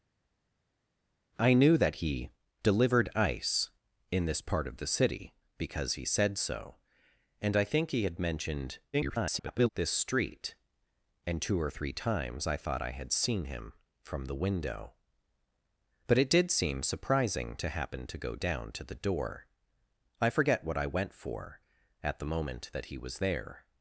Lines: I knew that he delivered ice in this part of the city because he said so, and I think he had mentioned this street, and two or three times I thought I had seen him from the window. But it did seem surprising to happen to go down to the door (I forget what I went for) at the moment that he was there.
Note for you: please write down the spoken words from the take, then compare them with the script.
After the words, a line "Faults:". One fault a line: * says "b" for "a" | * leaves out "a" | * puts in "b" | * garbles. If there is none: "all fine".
I knew that he delivered ice in this part of the city because he said so, and I think he had mentioned [garbled] this street, and two or three times I thought I had seen him from the window. But it did seem surprising to happen to go down to the door (I forget what I went for) at the moment that he was there.
Faults:
* garbles